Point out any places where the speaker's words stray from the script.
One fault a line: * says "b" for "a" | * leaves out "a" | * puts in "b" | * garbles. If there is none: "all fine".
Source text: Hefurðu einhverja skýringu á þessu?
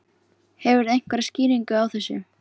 all fine